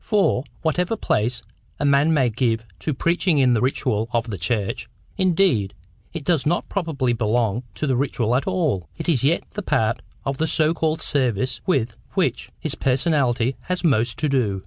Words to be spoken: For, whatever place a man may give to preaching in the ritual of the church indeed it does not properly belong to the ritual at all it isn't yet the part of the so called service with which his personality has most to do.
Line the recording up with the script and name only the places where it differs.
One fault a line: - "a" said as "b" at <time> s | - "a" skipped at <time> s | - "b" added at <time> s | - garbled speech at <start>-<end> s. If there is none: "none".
- "isn't" said as "is" at 9.1 s